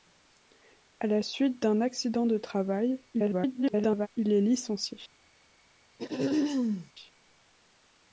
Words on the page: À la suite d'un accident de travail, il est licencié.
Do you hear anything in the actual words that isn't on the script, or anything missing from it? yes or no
yes